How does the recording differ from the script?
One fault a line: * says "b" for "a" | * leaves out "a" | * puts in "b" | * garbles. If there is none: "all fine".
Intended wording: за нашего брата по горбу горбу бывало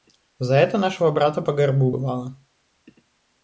* puts in "это"
* leaves out "горбу"